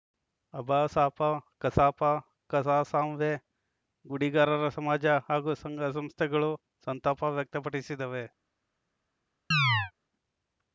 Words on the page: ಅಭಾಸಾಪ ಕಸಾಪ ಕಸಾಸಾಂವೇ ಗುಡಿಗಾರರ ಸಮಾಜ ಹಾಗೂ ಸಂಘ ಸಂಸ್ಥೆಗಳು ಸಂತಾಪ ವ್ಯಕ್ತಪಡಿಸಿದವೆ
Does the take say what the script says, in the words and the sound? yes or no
no